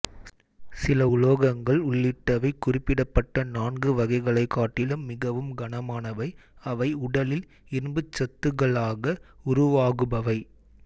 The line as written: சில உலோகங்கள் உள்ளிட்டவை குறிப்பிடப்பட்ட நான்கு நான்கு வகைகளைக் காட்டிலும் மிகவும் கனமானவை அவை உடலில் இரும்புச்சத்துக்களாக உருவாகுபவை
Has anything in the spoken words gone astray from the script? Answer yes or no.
yes